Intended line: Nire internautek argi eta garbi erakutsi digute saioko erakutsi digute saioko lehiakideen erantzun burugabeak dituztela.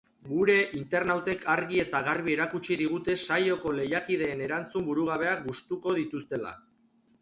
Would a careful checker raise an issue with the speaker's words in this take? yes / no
yes